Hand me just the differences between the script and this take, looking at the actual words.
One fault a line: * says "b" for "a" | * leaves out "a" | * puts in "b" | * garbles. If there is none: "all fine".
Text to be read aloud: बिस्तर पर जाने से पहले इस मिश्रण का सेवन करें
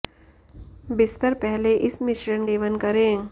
* leaves out "पर जाने से"
* leaves out "का"